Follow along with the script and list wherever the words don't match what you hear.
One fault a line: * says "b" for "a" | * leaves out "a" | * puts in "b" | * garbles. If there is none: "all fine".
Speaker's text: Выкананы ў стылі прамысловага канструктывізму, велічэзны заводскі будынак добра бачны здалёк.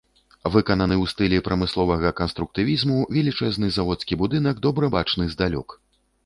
all fine